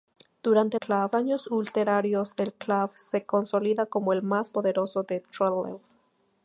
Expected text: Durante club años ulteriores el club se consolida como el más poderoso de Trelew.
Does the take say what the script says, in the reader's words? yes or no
yes